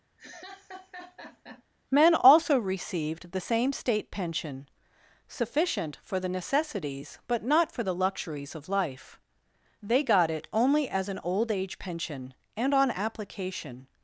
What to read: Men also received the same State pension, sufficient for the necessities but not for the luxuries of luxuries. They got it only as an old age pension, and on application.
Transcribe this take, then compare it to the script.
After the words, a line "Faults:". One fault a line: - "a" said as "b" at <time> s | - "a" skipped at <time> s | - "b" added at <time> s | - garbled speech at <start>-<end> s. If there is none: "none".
Men also received the same State pension, sufficient for the necessities but not for the luxuries of life. They got it only as an old age pension, and on application.
Faults:
- "luxuries" said as "life" at 8.7 s